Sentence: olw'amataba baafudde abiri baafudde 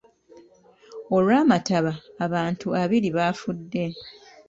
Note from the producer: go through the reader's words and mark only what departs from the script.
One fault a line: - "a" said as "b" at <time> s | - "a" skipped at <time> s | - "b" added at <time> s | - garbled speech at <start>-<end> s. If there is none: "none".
- "baafudde" said as "abantu" at 2.2 s